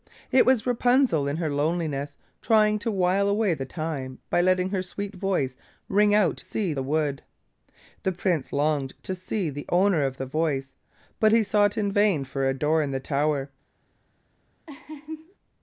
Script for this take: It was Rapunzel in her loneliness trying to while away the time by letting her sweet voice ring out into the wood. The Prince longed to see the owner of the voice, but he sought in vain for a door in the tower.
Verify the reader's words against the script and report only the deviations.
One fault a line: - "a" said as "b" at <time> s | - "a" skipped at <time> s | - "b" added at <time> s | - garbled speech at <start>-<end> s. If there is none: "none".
- "into" said as "see" at 6.4 s